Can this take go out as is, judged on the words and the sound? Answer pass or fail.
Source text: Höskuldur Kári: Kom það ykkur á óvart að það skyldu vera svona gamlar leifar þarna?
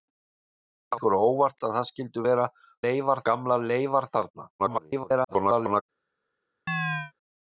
fail